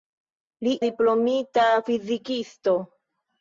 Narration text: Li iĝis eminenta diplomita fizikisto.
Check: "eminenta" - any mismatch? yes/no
yes